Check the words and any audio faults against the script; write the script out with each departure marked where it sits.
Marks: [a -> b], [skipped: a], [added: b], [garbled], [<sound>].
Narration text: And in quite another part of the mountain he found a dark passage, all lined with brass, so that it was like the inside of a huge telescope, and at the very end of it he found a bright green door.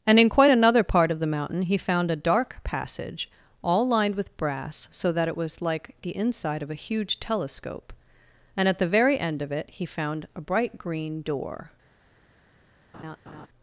And in quite another part of the mountain he found a dark passage, all lined with brass, so that it was like the inside of a huge telescope, and at the very end of it he found a bright green door. [laugh]